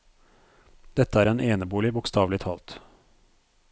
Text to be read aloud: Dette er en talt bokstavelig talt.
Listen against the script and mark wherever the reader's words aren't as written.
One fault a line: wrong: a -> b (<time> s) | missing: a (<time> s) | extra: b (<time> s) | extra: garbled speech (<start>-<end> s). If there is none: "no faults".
wrong: talt -> enebolig (1.5 s)